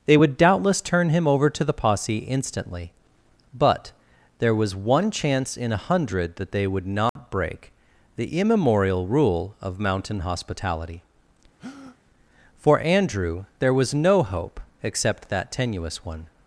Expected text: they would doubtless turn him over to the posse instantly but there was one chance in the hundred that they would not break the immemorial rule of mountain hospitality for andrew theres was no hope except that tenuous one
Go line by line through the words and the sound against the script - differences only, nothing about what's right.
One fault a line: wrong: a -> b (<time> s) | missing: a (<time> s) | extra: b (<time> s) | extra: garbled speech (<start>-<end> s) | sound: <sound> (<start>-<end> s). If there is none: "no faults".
wrong: the -> a (5.7 s)
sound: dropout (7.1-7.2 s)
sound: breath (11.6-12.0 s)
wrong: theres -> there (13.6 s)